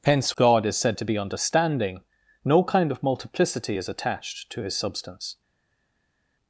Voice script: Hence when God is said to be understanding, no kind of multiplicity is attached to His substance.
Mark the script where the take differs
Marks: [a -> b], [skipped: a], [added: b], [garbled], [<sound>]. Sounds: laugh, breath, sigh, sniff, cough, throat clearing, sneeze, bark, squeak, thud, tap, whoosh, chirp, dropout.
Hence [skipped: when] God is said to be understanding, no kind of multiplicity is attached to His substance.